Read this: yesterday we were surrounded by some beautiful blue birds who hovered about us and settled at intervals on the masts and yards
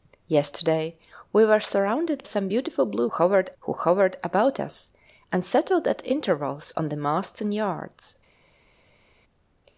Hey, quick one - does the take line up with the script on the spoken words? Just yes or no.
no